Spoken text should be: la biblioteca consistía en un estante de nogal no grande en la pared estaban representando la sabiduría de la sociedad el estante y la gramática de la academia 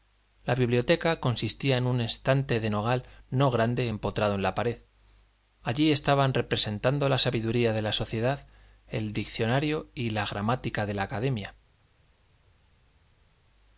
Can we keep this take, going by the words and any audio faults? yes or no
no